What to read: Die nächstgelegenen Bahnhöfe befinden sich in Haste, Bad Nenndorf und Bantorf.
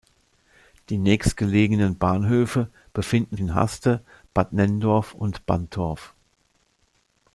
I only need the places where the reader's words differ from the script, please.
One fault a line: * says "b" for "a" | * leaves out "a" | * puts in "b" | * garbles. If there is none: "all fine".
* leaves out "sich"